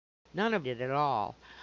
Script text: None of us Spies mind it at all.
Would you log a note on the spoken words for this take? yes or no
yes